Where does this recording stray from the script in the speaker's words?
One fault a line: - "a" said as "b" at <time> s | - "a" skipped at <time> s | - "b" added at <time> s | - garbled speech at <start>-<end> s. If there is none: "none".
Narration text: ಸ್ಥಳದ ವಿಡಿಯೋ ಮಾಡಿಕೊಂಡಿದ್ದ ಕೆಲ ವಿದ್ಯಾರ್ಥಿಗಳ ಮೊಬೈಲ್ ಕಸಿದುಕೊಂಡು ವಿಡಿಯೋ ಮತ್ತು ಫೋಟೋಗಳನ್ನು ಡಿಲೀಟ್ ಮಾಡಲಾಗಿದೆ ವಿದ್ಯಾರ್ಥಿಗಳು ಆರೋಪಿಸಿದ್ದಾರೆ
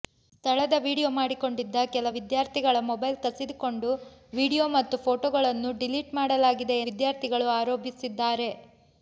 none